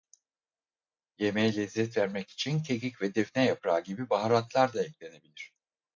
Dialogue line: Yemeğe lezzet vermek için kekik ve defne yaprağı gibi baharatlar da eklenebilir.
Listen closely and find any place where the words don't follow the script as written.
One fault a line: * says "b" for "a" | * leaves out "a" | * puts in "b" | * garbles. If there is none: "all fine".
all fine